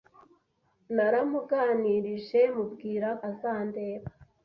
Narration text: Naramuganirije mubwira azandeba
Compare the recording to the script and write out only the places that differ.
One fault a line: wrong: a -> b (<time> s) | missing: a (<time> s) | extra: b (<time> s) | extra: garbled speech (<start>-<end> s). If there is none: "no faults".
no faults